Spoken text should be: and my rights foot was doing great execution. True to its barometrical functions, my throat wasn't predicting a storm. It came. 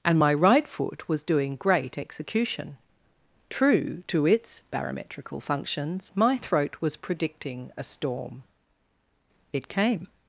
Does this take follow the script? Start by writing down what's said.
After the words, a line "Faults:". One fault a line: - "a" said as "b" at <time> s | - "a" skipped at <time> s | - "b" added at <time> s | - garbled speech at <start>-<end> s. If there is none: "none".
and my right foot was doing great execution. True to its barometrical functions, my throat was predicting a storm. It came.
Faults:
- "rights" said as "right" at 0.3 s
- "wasn't" said as "was" at 6.8 s